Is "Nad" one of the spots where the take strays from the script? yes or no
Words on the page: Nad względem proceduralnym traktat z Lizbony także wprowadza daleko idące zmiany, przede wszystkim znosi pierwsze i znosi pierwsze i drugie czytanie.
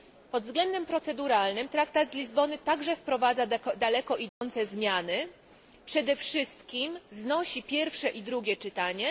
yes